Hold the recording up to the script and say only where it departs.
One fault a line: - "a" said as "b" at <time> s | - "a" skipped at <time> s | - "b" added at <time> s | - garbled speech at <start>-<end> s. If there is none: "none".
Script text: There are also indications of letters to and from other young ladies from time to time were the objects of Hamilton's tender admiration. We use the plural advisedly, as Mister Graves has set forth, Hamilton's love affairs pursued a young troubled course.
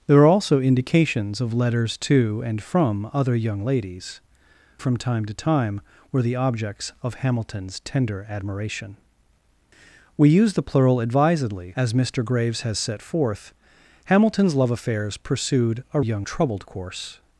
none